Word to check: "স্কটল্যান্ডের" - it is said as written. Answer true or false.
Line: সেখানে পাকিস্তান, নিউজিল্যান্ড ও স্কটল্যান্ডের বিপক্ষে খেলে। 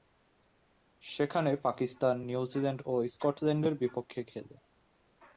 true